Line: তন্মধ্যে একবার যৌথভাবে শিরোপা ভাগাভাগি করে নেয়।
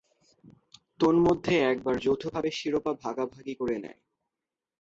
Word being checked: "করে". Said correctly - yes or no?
yes